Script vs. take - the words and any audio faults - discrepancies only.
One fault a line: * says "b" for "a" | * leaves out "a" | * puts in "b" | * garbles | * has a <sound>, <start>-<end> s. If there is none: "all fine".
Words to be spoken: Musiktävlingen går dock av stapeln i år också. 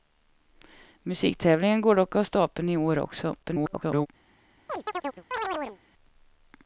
* garbles
* has a chirp, 4.7-5.8 s